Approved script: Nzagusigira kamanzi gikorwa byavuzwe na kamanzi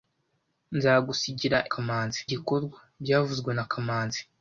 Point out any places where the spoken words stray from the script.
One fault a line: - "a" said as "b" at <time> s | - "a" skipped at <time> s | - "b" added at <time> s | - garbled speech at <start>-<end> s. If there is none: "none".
none